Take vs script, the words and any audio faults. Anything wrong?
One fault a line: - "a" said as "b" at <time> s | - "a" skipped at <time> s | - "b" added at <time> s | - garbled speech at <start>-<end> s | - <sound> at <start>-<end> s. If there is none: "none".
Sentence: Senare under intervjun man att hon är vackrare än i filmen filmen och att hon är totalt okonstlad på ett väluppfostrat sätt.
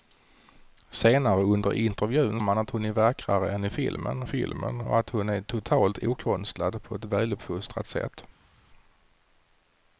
none